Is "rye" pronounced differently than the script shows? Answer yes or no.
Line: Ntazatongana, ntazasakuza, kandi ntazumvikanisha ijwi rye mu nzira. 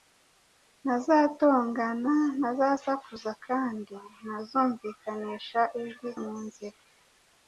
yes